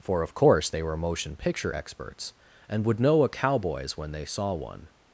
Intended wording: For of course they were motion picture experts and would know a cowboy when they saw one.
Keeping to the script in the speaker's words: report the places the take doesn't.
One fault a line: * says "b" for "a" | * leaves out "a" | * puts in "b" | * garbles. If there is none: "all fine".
* says "cowboys" for "cowboy"